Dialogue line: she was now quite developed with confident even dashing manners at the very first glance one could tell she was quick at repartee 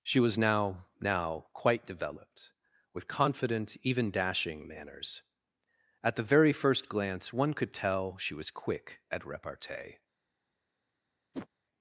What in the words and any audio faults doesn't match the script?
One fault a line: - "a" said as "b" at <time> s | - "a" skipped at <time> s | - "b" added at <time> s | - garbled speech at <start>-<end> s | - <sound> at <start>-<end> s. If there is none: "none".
- "now" added at 1.0 s
- whoosh at 11.3-11.5 s